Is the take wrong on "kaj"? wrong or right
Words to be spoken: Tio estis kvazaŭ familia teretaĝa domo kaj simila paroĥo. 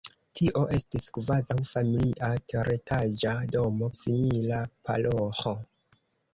wrong